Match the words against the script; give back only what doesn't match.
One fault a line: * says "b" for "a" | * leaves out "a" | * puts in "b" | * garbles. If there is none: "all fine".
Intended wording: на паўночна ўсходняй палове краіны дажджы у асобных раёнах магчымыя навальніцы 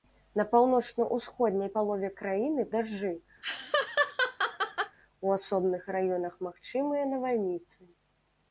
all fine